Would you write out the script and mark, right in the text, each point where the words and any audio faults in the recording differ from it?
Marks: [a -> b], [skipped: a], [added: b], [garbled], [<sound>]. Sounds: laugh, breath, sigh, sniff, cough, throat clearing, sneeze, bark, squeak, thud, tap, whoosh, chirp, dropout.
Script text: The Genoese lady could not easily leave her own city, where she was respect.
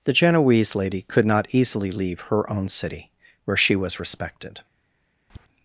The Genoese lady could not easily leave her own city, where she was [respect. -> respected] [tap]